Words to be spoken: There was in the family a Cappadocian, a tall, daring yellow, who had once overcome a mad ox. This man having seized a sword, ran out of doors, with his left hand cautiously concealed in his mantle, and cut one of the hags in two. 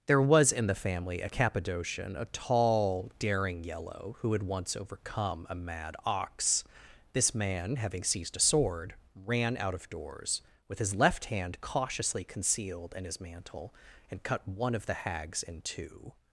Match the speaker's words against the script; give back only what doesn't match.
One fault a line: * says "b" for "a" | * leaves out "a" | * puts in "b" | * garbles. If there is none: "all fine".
all fine